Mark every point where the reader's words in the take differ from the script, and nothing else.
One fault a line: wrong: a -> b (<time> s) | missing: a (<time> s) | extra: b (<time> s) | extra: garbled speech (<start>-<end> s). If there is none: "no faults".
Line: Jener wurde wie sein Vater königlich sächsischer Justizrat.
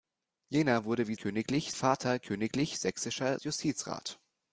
wrong: sein -> königlich (1.1 s)